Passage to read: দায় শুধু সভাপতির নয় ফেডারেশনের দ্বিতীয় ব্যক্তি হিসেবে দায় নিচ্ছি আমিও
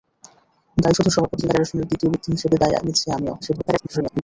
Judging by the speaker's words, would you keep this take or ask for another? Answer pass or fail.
fail